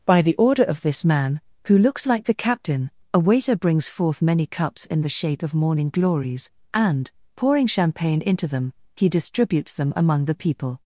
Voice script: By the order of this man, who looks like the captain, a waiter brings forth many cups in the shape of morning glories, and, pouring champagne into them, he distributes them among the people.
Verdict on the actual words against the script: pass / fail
pass